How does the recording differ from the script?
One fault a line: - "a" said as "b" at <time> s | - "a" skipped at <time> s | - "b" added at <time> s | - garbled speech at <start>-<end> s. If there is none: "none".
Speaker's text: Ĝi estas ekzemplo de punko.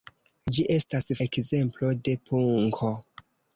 none